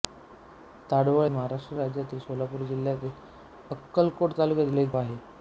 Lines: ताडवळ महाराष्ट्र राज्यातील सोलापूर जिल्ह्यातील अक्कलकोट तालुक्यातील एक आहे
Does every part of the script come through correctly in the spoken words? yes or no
yes